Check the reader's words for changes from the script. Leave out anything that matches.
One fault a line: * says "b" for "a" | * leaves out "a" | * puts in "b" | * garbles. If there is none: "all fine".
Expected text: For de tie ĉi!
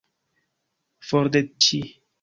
* leaves out "tie"